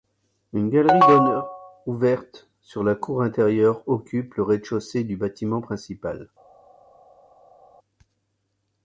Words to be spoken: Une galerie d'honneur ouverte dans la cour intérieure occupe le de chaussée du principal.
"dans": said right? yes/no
no